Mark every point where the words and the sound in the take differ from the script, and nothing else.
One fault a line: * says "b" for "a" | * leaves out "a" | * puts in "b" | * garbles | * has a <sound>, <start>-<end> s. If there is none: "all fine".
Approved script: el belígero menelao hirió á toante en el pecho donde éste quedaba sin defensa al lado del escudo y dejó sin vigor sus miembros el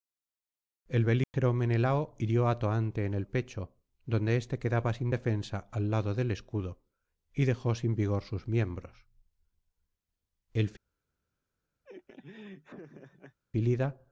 * has a dropout, 1.2-1.3 s
* has a laugh, 11.8-13.4 s